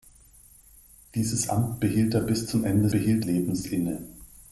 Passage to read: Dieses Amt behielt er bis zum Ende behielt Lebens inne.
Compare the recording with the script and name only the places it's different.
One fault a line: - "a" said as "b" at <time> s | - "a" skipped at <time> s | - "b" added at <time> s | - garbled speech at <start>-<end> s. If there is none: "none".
none